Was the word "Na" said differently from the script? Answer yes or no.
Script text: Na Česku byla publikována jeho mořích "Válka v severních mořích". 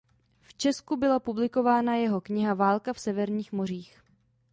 yes